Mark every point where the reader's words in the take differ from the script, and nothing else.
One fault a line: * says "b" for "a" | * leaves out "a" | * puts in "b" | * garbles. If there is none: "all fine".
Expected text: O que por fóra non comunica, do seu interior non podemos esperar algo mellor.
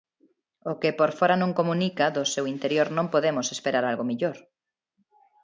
all fine